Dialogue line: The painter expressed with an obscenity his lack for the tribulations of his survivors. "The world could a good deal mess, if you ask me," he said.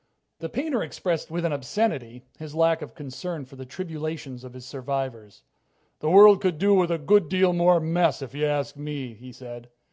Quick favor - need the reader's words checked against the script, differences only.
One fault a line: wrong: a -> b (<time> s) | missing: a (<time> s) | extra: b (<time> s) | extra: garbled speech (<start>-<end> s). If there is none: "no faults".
extra: of concern (2.8 s)
extra: do with (6.6 s)
extra: more (7.5 s)